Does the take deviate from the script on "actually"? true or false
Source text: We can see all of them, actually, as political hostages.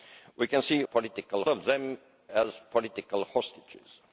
true